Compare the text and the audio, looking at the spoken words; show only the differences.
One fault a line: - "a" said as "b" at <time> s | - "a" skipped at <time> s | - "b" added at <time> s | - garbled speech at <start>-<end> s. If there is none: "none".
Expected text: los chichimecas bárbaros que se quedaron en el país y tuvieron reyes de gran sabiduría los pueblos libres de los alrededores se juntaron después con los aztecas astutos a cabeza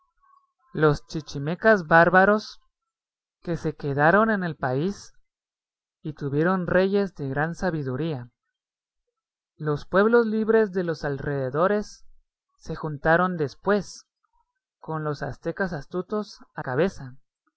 none